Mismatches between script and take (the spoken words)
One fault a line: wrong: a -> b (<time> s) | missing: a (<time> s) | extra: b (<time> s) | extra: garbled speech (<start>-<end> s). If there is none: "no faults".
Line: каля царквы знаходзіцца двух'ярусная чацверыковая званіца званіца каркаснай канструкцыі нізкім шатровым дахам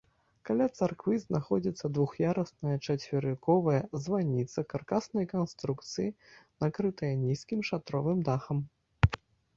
missing: званіца (4.6 s)
extra: накрытая (6.7 s)